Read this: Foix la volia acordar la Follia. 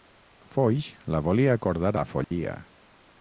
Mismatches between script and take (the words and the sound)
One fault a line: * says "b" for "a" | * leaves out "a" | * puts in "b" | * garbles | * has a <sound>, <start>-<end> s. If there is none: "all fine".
* has a dropout, 2.2-2.3 s